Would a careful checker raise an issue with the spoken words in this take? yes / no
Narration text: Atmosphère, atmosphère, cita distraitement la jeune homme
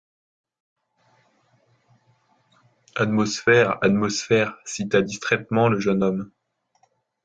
yes